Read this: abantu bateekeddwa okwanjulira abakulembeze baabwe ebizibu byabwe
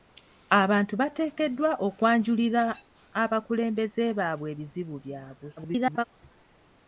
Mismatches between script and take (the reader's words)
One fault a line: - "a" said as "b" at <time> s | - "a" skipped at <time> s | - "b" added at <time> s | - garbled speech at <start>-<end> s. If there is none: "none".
- garbled speech at 5.6-6.0 s